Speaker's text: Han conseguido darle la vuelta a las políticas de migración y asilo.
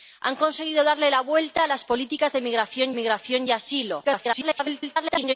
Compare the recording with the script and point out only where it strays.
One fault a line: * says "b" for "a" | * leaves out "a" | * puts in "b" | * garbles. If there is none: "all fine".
* puts in "migración"
* garbles